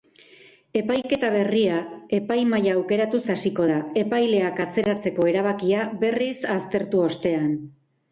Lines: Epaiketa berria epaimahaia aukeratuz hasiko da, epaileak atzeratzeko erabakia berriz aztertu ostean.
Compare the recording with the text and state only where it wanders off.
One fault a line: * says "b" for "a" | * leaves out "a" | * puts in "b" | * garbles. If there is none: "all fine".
all fine